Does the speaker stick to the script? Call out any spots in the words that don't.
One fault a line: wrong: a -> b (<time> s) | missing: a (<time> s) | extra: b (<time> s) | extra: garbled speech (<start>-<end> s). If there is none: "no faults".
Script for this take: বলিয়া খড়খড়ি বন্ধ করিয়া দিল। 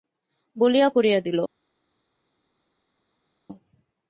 missing: খড়খড়ি বন্ধ (0.9 s)